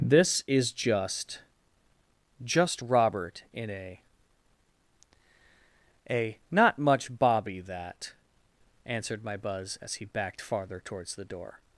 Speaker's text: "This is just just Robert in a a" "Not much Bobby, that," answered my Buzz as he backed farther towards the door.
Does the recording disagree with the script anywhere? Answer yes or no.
no